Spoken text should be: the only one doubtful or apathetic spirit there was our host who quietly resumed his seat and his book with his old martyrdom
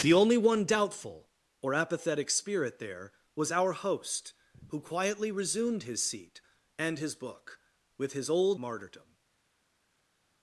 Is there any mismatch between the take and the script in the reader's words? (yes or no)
no